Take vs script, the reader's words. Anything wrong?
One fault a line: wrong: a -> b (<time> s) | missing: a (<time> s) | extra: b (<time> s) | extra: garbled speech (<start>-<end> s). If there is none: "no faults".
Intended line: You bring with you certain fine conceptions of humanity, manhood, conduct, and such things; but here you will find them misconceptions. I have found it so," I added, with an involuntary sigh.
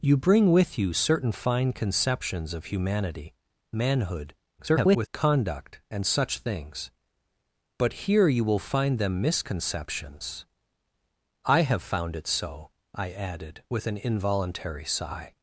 extra: garbled speech (4.6-5.1 s)